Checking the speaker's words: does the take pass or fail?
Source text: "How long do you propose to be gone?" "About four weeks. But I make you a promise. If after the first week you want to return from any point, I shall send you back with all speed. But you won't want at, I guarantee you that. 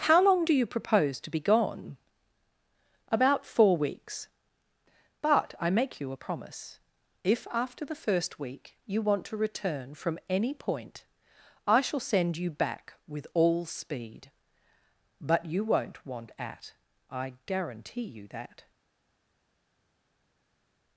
pass